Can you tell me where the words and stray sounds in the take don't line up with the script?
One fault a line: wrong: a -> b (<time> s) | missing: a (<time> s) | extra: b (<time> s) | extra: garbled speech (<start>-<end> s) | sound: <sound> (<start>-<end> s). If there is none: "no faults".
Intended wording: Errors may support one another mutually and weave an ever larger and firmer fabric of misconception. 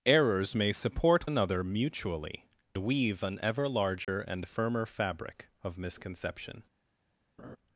missing: one (1.3 s)
missing: and (2.5 s)
sound: dropout (4.0-4.1 s)
sound: laugh (7.4-7.6 s)